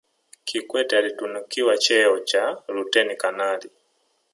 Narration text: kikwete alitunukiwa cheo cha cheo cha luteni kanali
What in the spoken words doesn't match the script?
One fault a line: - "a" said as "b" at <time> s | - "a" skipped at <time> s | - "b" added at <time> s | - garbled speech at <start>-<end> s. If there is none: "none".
- "cheo cha" skipped at 2.6 s